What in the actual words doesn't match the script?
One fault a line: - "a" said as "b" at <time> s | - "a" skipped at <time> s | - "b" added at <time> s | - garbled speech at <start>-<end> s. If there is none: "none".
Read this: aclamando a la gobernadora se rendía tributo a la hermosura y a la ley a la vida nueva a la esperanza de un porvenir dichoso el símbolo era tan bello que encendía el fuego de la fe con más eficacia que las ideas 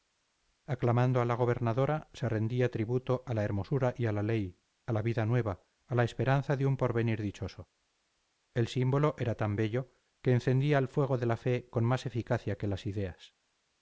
none